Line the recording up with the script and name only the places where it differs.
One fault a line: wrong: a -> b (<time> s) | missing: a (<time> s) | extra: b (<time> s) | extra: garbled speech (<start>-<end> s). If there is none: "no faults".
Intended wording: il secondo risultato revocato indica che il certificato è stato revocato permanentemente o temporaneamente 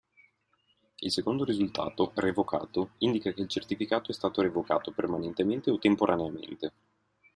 no faults